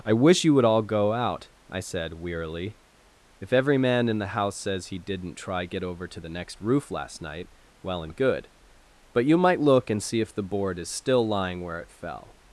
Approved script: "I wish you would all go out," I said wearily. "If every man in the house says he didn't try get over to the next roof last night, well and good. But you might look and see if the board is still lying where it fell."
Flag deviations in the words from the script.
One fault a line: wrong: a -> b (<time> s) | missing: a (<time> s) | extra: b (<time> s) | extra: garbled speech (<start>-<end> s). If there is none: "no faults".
no faults